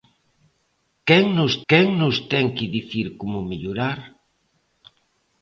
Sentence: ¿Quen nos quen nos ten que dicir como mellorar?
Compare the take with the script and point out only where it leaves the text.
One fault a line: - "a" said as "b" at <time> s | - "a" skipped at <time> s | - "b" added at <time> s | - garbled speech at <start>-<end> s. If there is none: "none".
none